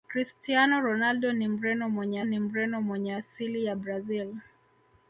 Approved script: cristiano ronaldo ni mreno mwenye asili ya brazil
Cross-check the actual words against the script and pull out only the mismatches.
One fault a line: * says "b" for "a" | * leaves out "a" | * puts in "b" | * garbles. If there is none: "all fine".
* puts in "ni mreno mwenye"